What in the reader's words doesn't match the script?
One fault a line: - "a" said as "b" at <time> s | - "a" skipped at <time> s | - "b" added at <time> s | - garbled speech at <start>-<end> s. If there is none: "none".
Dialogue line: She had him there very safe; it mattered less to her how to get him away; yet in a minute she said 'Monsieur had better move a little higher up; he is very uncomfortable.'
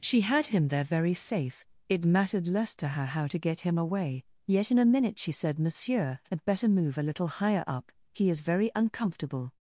none